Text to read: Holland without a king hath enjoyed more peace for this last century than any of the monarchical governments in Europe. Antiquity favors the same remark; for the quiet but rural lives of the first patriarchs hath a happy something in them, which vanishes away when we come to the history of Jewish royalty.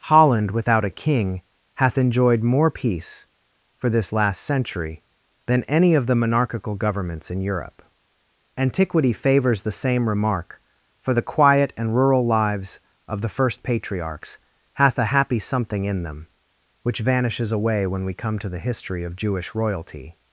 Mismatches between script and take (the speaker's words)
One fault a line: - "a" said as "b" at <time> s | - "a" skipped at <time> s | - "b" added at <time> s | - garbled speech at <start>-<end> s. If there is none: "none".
- "but" said as "and" at 11.8 s